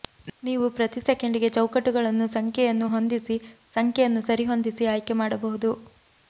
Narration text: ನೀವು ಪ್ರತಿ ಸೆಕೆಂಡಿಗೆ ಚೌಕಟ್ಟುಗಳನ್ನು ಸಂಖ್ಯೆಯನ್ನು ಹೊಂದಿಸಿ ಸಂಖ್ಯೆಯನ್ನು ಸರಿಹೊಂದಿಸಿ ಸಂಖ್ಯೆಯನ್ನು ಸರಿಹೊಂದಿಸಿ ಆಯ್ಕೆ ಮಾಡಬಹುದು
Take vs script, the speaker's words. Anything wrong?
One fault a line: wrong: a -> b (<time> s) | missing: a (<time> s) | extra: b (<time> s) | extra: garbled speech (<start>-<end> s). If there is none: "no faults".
missing: ಸಂಖ್ಯೆಯನ್ನು ಸರಿಹೊಂದಿಸಿ (4.9 s)